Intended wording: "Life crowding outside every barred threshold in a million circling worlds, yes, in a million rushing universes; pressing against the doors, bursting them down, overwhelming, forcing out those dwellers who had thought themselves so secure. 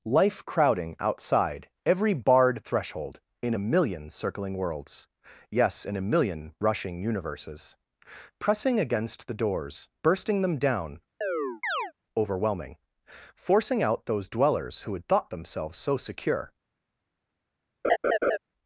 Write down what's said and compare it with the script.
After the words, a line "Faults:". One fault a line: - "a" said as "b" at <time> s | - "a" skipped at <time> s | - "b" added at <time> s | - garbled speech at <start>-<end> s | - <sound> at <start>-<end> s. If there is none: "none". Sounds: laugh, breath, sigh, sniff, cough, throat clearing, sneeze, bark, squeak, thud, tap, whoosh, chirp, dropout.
"Life crowding outside every barred threshold in a million circling worlds, yes, in a million rushing universes; pressing against the doors, bursting them down, overwhelming, forcing out those dwellers who had thought themselves so secure.
Faults:
- chirp at 11.2-11.9 s
- laugh at 17.8-18.4 s